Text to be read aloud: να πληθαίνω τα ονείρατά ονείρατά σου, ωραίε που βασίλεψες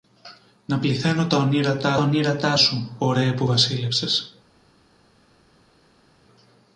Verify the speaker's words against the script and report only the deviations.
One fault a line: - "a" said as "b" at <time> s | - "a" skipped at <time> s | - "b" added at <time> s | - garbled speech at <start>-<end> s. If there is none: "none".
none